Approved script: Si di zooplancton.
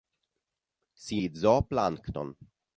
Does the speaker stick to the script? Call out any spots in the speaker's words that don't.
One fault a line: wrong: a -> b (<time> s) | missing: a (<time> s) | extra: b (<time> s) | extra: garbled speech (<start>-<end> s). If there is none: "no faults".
no faults